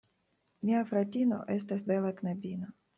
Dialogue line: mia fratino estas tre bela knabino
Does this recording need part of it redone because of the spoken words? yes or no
yes